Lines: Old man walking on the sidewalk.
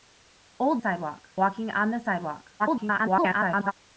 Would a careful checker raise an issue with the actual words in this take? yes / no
yes